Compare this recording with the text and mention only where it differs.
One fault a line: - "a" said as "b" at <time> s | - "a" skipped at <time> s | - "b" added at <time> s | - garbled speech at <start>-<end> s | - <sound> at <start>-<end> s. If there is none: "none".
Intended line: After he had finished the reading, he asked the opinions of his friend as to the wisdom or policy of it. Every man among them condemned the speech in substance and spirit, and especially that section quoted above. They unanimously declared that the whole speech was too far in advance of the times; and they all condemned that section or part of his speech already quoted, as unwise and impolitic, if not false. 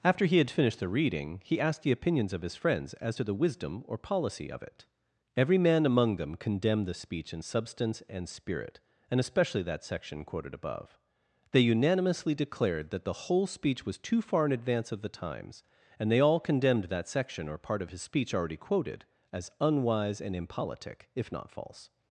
- "friend" said as "friends" at 2.5 s